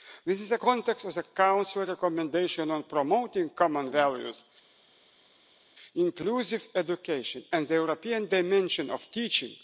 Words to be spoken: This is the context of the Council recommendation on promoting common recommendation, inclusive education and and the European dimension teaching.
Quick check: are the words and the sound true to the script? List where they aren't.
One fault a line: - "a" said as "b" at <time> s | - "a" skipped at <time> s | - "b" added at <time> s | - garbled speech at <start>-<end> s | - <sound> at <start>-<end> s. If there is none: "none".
- "recommendation" said as "values" at 3.9 s
- "and" skipped at 7.7 s
- "of" added at 8.9 s